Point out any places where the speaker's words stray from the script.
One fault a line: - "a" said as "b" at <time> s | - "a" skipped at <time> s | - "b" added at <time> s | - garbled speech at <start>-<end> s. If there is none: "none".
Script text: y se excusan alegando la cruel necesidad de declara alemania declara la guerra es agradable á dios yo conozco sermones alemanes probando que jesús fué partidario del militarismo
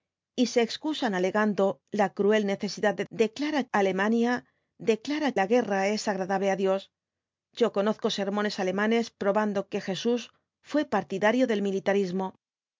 none